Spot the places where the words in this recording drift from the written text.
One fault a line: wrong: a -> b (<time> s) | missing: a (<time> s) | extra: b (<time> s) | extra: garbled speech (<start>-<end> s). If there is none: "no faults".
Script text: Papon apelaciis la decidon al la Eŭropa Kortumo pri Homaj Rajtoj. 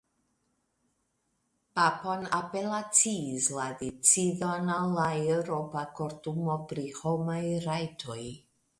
no faults